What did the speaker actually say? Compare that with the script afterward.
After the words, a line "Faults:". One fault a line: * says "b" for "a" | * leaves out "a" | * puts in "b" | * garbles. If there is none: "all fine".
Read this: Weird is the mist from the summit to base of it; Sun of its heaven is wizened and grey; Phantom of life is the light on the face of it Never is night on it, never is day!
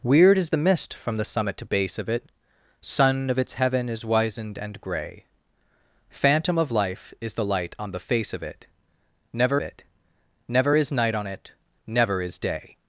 Weird is the mist from the summit to base of it; Sun of its heaven is wizened and grey; Phantom of life is the light on the face of it Never it Never is night on it, never is day!
Faults:
* puts in "it Never"